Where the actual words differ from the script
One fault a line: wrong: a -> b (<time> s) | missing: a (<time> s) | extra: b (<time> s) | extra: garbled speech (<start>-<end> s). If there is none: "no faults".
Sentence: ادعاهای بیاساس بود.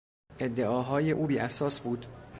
extra: او (1.1 s)